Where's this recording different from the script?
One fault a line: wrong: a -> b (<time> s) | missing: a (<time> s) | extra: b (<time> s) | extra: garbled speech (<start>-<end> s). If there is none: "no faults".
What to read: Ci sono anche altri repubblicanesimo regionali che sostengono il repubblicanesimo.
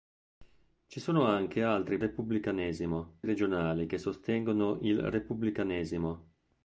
no faults